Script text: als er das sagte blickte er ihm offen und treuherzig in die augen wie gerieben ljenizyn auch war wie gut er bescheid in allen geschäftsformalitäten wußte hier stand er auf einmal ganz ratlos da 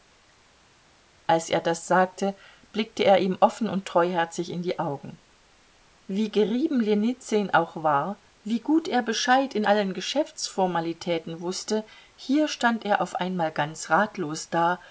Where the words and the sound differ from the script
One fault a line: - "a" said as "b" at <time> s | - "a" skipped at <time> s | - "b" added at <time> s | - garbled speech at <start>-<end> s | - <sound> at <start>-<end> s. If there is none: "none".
none